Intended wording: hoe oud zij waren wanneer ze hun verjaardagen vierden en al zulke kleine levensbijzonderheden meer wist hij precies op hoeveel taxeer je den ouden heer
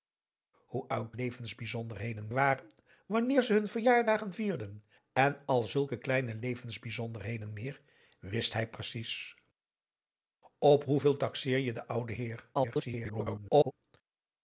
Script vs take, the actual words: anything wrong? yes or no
yes